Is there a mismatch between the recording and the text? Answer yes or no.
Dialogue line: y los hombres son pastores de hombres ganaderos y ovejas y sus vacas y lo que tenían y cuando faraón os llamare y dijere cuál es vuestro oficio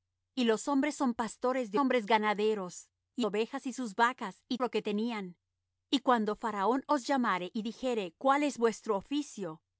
no